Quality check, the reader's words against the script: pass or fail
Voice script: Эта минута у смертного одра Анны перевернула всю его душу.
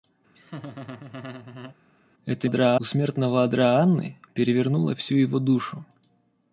fail